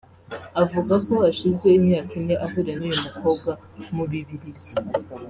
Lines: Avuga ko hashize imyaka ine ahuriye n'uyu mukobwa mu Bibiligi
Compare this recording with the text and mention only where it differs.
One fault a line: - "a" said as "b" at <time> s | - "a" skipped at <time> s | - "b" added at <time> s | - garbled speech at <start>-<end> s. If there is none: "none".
none